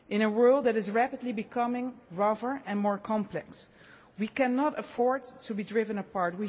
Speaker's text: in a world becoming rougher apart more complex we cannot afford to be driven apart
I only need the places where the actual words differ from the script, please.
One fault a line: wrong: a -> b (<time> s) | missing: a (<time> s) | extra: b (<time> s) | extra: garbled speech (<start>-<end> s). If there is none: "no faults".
extra: that is rapidly (0.6 s)
wrong: apart -> and (2.7 s)